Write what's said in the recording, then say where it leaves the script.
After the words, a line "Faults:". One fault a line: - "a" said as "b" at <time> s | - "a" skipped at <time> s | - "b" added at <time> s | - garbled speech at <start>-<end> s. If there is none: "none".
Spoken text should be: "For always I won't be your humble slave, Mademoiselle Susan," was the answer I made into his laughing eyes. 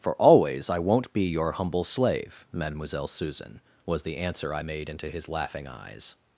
"For always I won't be your humble slave, Mademoiselle Susan," was the answer I made into his laughing eyes.
Faults:
none